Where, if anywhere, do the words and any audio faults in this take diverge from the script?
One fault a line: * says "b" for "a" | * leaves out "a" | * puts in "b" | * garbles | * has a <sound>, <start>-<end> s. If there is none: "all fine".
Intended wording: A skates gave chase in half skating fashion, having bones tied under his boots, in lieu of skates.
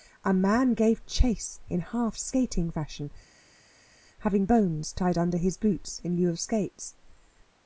* says "man" for "skates"